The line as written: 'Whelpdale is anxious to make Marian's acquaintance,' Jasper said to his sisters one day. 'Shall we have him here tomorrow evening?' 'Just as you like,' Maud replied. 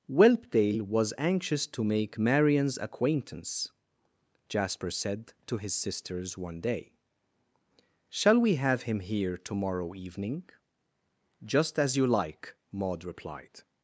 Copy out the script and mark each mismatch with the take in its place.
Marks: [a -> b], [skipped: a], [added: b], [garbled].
'Whelpdale [is -> was] anxious to make Marian's acquaintance,' Jasper said to his sisters one day. 'Shall we have him here tomorrow evening?' 'Just as you like,' Maud replied.